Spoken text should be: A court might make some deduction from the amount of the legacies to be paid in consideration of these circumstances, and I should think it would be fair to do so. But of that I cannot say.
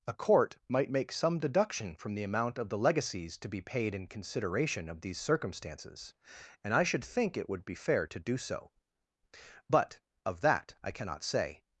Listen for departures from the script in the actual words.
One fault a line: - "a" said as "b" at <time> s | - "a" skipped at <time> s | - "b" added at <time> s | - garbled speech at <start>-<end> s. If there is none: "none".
none